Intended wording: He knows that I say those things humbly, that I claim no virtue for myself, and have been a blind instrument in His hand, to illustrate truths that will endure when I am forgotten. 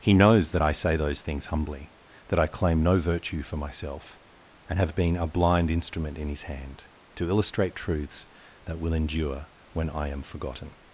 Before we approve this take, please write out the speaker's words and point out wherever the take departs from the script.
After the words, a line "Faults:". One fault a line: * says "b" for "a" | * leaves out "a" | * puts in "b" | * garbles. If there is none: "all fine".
He knows that I say those things humbly, that I claim no virtue for myself, and have been a blind instrument in His hand, to illustrate truths that will endure when I am forgotten.
Faults:
all fine